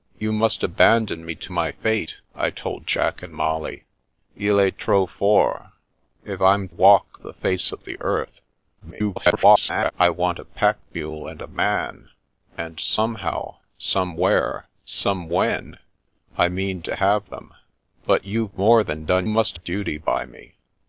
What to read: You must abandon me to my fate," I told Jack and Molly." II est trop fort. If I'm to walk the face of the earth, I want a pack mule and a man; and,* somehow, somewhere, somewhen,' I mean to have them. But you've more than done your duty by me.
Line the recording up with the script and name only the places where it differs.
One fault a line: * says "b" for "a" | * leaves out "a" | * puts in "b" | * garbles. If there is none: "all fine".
* leaves out "to"
* garbles
* says "must" for "your"